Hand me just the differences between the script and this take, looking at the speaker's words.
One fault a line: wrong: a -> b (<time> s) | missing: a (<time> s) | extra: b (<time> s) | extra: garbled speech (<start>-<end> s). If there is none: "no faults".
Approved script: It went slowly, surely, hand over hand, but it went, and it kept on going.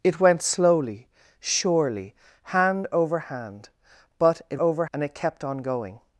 wrong: went -> over (4.6 s)